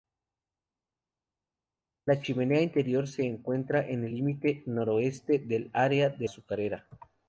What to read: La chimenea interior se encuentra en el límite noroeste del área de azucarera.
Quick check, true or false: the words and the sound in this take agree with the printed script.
true